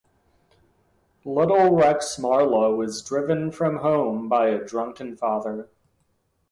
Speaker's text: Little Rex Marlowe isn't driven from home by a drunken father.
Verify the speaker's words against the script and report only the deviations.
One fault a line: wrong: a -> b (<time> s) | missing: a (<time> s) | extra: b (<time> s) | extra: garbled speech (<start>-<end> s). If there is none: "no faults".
wrong: isn't -> is (2.8 s)